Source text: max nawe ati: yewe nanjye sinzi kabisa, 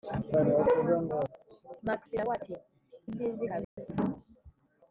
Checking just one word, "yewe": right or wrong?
wrong